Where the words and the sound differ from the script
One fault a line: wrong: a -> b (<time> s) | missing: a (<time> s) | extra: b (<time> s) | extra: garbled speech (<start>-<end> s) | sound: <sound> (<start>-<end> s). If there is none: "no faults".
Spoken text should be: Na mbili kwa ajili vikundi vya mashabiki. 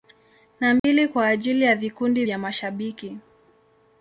sound: dropout (0.8-0.8 s)
extra: ya (1.6 s)